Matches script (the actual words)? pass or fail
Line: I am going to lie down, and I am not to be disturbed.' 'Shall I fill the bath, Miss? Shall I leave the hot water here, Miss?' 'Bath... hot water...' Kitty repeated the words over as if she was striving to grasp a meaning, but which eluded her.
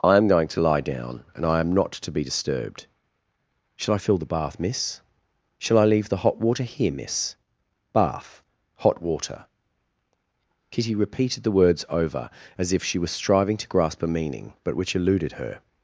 pass